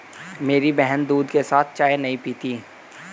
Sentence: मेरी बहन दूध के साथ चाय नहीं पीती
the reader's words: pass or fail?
pass